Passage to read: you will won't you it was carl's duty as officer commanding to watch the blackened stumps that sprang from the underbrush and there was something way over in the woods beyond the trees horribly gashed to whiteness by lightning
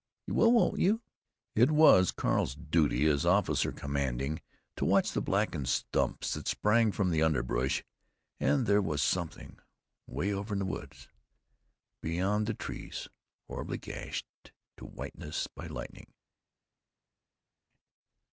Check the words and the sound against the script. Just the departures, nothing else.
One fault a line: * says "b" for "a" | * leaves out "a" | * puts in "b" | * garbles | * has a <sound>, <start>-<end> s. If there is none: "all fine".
all fine